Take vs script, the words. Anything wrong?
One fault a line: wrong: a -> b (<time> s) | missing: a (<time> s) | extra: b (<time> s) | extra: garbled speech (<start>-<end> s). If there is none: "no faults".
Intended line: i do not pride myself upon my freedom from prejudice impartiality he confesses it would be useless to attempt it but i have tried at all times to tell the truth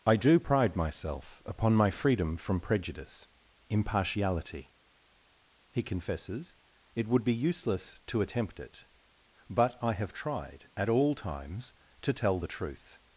missing: not (0.4 s)